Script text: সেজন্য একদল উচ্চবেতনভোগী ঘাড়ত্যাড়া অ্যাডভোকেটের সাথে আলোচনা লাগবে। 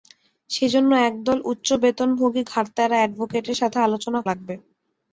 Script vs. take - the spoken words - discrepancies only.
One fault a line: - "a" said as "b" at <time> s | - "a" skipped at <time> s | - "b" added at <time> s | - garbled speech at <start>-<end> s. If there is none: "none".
none